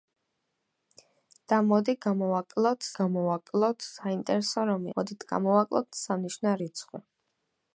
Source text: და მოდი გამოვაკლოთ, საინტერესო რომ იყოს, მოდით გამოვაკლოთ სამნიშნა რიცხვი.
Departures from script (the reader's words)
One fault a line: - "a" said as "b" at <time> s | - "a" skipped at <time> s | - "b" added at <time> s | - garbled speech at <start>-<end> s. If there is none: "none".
- "გამოვაკლოთ" added at 3.0 s
- "იყოს" skipped at 4.9 s